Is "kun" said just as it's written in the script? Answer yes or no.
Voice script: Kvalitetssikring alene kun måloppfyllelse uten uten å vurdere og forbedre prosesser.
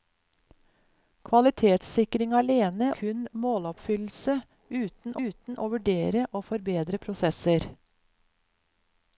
yes